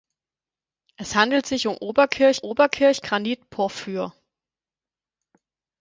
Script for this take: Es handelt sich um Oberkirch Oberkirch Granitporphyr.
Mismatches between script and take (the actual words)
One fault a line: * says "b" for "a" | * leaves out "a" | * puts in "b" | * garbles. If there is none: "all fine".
all fine